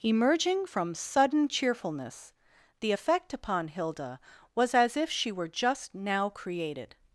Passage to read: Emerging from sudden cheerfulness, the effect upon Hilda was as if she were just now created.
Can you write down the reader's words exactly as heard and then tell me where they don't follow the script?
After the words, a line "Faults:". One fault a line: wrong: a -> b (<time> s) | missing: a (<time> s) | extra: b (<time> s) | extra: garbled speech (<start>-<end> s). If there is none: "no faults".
Emerging from sudden cheerfulness, the effect upon Hilda was as if she were just now created.
Faults:
no faults